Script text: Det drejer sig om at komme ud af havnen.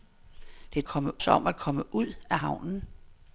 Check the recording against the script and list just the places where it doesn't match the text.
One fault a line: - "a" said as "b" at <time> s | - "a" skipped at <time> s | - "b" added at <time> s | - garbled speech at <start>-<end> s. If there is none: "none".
- "drejer" said as "komme" at 0.8 s